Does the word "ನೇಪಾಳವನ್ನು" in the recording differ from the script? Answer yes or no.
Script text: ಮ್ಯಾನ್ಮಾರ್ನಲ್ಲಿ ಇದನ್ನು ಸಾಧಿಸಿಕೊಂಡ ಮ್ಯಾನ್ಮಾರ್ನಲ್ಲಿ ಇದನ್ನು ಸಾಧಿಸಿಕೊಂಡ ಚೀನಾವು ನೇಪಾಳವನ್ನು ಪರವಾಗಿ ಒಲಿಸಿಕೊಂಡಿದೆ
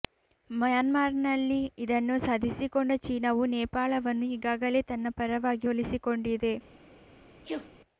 yes